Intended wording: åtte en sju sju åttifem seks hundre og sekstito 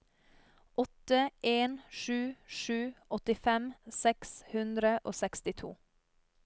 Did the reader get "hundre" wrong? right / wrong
right